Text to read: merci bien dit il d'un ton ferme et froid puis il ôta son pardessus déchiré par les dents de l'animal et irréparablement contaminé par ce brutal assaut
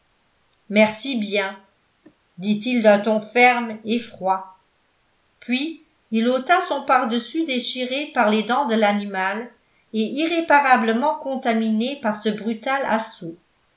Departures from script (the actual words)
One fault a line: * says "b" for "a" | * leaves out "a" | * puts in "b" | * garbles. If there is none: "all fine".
all fine